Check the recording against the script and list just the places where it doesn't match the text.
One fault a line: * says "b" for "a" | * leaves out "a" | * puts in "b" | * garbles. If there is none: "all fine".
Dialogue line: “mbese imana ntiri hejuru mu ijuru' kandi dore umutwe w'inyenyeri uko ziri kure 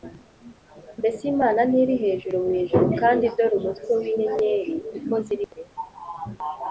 all fine